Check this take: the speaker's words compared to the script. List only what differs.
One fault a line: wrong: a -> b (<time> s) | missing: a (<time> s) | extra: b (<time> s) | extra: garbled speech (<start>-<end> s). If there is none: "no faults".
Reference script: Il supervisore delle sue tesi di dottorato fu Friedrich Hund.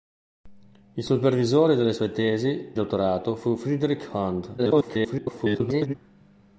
missing: di (2.7 s)
extra: garbled speech (4.6-5.9 s)